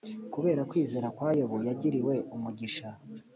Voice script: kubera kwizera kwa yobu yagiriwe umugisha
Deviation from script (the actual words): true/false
false